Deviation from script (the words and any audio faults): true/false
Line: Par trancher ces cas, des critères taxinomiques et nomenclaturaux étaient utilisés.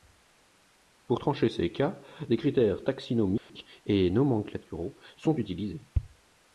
true